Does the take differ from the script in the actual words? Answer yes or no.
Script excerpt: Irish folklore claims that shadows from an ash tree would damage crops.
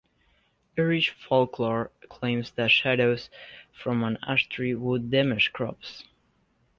no